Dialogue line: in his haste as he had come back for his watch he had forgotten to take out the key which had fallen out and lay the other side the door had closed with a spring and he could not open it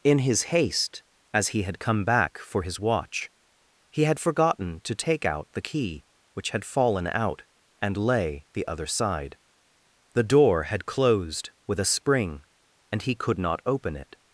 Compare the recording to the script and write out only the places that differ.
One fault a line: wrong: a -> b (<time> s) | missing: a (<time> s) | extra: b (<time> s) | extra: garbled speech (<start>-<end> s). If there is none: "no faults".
no faults